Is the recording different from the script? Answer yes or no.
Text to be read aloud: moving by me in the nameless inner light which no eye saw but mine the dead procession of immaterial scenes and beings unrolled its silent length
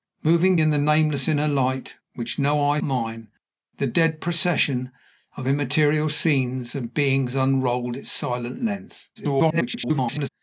yes